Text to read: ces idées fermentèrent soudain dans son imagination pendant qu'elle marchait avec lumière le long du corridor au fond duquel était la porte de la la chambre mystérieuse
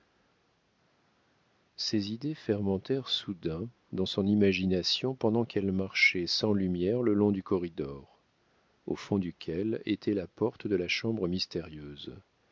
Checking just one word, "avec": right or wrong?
wrong